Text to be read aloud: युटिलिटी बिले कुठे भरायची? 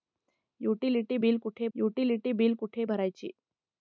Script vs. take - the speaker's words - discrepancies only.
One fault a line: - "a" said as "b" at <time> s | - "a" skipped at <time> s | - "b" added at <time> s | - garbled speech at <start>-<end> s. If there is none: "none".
- "युटिलिटी बिले कुठे" added at 1.8 s